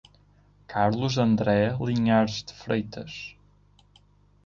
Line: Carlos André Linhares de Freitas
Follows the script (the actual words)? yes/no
yes